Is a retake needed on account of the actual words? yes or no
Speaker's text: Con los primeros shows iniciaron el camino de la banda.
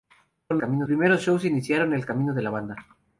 yes